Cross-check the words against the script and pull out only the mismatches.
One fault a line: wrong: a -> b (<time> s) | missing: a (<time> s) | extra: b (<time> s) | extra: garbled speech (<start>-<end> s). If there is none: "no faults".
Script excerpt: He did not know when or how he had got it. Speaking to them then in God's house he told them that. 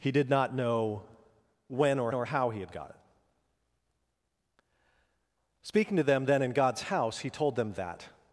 extra: or (2.1 s)